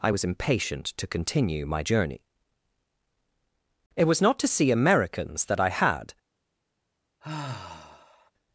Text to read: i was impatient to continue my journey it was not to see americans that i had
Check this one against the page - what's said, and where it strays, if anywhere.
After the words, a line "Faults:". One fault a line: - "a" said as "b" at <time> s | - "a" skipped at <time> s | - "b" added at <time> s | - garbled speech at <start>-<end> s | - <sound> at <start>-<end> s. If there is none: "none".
i was impatient to continue my journey it was not to see americans that i had
Faults:
- sigh at 7.2-8.3 s